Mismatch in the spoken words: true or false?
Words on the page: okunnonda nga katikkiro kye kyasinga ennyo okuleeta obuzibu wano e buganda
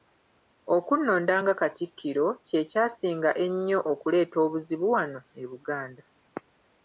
false